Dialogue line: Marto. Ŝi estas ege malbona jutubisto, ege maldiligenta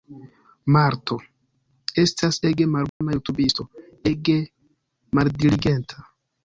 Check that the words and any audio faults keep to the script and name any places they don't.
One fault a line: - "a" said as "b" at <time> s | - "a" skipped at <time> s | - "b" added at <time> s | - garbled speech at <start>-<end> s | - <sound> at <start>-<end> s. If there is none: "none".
- "Ŝi" skipped at 1.2 s
- dropout at 2.9-3.0 s